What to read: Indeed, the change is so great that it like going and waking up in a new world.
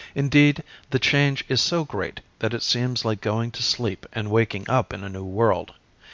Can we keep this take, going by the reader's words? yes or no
no